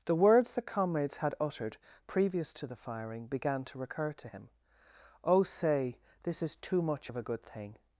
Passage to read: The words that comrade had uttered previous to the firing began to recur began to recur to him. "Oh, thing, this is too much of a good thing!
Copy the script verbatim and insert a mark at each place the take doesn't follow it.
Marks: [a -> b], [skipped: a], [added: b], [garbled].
The words that [comrade -> comrades] had uttered previous to the firing began to recur [skipped: began] to [skipped: recur to] him. "Oh, [thing, -> say] this is too much of a good thing!